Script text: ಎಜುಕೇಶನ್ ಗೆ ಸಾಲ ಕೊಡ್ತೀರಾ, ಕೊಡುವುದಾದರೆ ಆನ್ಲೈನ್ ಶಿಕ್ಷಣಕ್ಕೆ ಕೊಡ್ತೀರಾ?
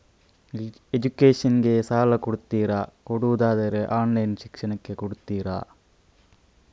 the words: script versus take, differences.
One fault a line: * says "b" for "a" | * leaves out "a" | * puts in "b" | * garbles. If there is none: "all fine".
all fine